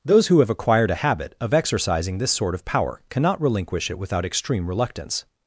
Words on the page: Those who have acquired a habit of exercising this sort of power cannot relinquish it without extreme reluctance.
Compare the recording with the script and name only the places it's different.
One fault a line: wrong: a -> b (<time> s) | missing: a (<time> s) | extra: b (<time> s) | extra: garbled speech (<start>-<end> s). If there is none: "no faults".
no faults